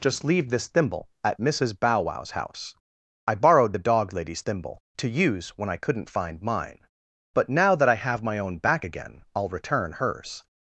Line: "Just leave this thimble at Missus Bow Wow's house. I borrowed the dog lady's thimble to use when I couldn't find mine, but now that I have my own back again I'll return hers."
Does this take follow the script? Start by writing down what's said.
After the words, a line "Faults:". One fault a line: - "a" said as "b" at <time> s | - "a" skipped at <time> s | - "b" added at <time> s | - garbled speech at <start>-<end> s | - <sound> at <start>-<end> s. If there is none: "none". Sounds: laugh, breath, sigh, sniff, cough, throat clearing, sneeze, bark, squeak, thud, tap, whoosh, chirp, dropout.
"Just leave this thimble at Missus Bow Wow's house. I borrowed the dog lady's thimble to use when I couldn't find mine, but now that I have my own back again I'll return hers."
Faults:
none